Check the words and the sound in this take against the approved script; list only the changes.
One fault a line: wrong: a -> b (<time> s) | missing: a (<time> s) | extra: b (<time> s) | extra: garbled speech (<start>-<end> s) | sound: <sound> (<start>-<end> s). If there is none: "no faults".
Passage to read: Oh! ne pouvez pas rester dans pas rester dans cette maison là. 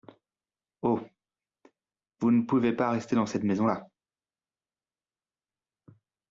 extra: vous (2.2 s)
missing: pas rester dans (3.3 s)